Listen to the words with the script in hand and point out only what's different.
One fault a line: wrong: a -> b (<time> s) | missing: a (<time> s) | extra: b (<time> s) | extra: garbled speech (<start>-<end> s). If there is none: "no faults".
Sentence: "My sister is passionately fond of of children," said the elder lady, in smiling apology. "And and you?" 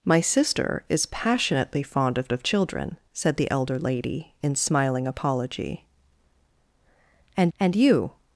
no faults